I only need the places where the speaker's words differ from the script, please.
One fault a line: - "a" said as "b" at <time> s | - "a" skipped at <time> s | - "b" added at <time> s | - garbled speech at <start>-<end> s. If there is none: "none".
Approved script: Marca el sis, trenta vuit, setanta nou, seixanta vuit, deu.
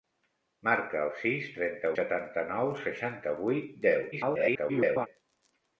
- "vuit" skipped at 1.9 s
- garbled speech at 4.1-5.1 s